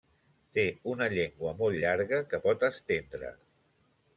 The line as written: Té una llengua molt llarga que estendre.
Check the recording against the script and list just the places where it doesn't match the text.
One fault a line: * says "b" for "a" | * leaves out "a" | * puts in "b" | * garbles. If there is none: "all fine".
* puts in "pot"